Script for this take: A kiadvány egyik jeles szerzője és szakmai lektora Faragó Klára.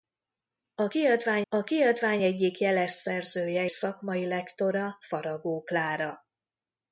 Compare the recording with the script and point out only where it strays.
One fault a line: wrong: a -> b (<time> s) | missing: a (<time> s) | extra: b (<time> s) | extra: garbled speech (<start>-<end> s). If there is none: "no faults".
extra: a kiadvány (1.5 s)
missing: és (3.7 s)